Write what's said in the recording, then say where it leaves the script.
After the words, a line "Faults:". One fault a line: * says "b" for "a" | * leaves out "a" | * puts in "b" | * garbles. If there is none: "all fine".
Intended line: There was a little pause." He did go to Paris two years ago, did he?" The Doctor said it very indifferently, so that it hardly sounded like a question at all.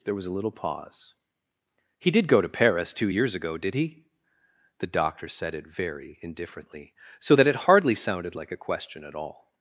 There was a little pause." He did go to Paris two years ago, did he?" The Doctor said it very indifferently, so that it hardly sounded like a question at all.
Faults:
all fine